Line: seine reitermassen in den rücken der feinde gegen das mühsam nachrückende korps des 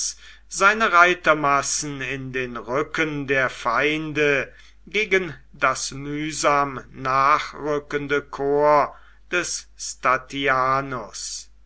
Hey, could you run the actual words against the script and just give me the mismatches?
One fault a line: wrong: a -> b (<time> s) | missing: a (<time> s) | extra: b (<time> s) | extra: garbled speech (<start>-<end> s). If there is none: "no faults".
no faults